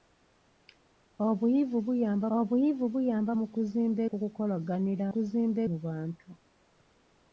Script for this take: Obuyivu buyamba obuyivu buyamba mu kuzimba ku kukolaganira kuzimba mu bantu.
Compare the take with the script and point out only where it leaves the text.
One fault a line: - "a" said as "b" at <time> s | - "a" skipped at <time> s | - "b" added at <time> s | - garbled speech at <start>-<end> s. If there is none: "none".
none